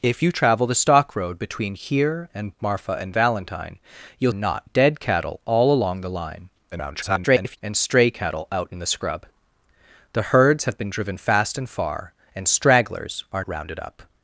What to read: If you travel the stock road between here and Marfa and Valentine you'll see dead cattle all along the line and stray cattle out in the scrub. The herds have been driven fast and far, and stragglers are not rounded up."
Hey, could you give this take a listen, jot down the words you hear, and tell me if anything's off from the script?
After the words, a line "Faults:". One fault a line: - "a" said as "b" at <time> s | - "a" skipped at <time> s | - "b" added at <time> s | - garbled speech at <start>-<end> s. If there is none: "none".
If you travel the stock road between here and Marfa and Valentine you'll not dead cattle all along the line [garbled] and stray cattle out in the scrub. The herds have been driven fast and far, and stragglers are rounded up."
Faults:
- "see" said as "not" at 4.3 s
- garbled speech at 6.7-7.6 s
- "not" skipped at 13.5 s